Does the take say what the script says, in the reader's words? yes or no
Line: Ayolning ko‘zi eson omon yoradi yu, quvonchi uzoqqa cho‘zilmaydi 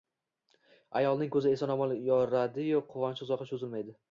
yes